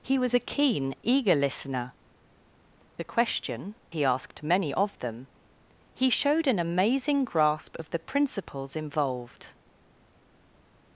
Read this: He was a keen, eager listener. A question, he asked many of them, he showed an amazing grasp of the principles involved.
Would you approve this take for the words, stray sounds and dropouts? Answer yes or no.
yes